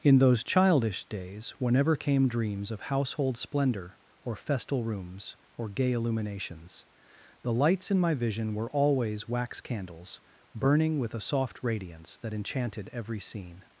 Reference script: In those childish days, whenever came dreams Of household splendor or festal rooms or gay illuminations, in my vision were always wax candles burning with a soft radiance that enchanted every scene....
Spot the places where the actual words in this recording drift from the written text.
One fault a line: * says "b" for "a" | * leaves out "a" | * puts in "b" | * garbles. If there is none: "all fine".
* puts in "the lights"